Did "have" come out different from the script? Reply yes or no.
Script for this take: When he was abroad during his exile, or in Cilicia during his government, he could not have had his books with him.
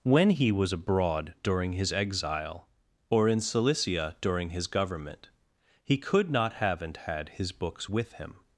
yes